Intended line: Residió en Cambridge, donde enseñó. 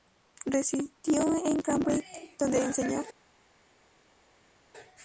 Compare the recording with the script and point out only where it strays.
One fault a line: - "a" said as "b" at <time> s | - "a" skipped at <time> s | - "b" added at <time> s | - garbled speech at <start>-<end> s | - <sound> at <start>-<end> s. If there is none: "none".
none